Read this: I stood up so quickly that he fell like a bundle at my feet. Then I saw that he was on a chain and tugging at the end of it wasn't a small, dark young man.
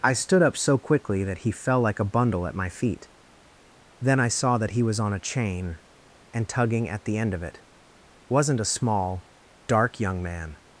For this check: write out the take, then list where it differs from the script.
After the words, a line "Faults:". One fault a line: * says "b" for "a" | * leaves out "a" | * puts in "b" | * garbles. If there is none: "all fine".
I stood up so quickly that he fell like a bundle at my feet. Then I saw that he was on a chain and tugging at the end of it wasn't a small, dark young man.
Faults:
all fine